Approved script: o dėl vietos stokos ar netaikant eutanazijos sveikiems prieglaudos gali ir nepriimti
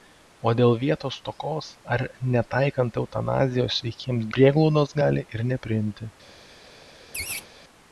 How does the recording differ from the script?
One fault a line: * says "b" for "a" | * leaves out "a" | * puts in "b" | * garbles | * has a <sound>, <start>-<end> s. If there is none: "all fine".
* has a laugh, 7.1-7.5 s